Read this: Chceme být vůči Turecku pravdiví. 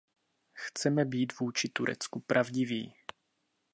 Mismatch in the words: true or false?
false